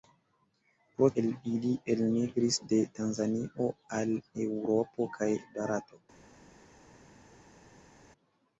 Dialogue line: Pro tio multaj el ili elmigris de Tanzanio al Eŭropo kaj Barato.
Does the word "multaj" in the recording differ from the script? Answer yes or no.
yes